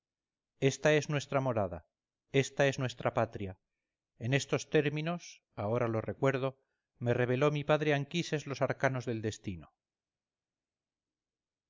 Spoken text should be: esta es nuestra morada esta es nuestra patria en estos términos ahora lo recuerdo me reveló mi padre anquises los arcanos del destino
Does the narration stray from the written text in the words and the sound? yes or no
no